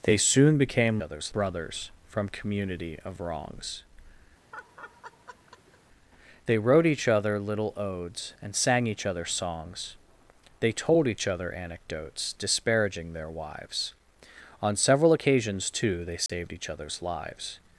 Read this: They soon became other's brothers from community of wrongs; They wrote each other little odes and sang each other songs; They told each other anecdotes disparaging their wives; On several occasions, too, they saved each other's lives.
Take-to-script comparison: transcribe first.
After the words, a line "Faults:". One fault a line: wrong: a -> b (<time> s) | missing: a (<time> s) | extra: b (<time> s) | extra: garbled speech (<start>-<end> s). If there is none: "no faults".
They soon became other's brothers from community of wrongs; They wrote each other little odes and sang each other songs; They told each other anecdotes disparaging their wives; On several occasions, too, they saved each other's lives.
Faults:
no faults